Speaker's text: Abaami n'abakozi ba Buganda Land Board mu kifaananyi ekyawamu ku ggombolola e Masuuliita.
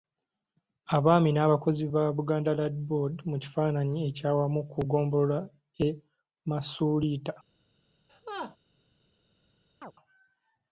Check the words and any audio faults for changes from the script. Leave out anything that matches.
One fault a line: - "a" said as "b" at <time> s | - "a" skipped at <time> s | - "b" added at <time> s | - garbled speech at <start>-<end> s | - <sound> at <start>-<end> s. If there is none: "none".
- laugh at 8.1-8.6 s
- chirp at 9.8-9.9 s